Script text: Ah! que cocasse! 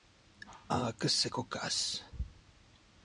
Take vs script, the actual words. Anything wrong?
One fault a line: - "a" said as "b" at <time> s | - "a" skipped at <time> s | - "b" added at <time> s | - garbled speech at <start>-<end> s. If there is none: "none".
- "c'est" added at 1.1 s